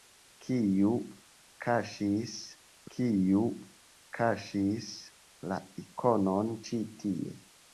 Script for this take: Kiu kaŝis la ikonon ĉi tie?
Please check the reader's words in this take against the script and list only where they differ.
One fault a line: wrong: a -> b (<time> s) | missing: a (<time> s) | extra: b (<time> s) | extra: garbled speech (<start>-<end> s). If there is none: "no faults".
extra: kiu kaŝis (2.9 s)